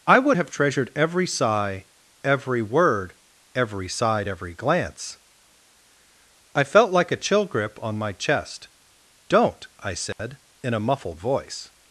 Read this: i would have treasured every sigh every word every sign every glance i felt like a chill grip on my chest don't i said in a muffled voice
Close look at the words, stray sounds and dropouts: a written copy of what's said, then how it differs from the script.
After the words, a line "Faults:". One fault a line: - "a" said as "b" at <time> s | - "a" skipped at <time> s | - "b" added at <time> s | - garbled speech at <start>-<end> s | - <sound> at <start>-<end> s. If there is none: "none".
i would have treasured every sigh every word every side every glance i felt like a chill grip on my chest don't i said in a muffled voice
Faults:
- "sign" said as "side" at 3.9 s
- dropout at 10.1-10.2 s